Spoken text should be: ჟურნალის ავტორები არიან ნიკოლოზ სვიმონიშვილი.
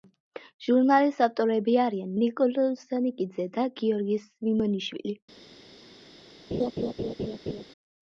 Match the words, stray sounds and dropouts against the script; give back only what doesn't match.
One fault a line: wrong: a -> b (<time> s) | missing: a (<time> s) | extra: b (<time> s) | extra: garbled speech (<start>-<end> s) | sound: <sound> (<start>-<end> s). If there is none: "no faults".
extra: სანიკიძე და გიორგი (2.9 s)
sound: laugh (6.5-7.6 s)